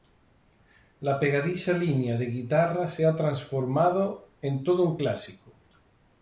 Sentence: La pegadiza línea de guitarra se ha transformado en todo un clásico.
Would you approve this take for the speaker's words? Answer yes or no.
yes